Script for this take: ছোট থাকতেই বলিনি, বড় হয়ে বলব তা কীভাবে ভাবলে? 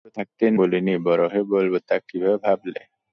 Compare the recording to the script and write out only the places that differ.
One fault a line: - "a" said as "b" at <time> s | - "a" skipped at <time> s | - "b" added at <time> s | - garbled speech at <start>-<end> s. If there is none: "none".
none